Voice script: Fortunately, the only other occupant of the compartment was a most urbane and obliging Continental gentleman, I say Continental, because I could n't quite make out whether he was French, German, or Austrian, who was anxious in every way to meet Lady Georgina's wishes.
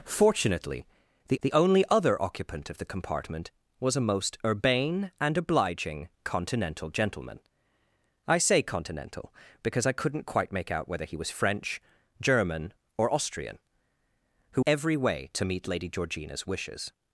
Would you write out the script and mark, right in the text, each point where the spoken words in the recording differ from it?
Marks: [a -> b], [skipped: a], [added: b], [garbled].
Fortunately, the [added: the] only other occupant of the compartment was a most urbane and obliging Continental gentleman, I say Continental, because I could n't quite make out whether he was French, German, or Austrian, who [skipped: was anxious in] every way to meet Lady Georgina's wishes.